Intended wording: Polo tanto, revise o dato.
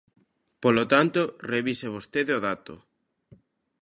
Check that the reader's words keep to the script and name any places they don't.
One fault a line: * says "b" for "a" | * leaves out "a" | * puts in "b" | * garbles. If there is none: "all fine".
* puts in "vostede"